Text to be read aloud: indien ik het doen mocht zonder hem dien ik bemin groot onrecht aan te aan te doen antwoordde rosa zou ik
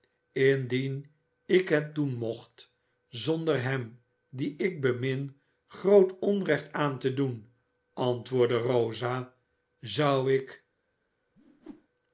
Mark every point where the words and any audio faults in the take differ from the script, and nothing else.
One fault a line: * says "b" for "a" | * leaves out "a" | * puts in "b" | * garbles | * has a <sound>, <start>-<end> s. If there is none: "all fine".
* leaves out "aan te"
* has a whoosh, 11.3-11.9 s